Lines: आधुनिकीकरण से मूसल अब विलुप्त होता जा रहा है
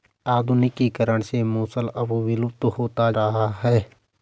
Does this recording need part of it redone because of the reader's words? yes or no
yes